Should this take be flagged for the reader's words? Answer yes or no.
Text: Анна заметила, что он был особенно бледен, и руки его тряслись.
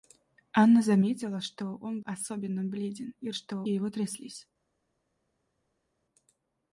yes